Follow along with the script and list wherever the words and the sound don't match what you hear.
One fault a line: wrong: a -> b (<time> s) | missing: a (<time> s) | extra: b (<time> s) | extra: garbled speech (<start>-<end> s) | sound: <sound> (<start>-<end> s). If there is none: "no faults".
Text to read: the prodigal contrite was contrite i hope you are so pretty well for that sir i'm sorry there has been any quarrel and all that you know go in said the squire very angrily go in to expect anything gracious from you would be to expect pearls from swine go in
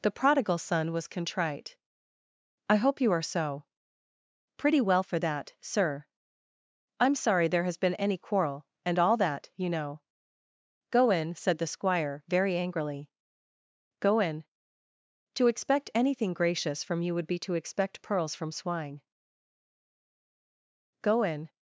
wrong: contrite -> son (0.6 s)